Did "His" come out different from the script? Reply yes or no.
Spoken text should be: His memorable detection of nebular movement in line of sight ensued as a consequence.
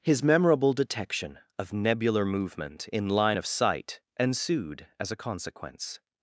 no